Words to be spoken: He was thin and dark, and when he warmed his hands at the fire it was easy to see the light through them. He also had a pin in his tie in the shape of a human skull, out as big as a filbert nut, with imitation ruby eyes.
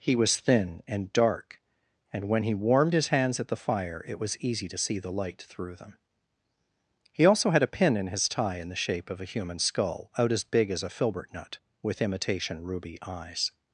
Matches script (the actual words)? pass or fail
pass